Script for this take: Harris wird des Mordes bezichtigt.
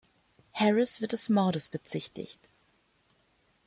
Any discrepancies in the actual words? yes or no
no